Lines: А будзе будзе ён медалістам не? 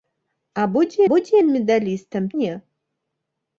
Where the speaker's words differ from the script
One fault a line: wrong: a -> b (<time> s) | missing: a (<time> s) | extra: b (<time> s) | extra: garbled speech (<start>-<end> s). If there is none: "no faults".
no faults